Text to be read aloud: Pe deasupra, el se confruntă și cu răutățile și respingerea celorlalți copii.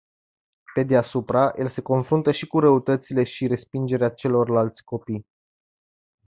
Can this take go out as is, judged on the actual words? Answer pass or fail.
pass